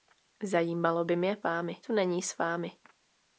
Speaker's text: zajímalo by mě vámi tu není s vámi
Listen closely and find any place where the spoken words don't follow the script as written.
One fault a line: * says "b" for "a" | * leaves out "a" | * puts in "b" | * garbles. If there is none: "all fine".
all fine